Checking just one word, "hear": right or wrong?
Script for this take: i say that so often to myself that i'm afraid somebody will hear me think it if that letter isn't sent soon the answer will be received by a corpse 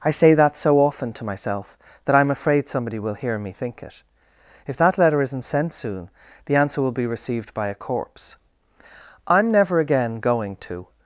right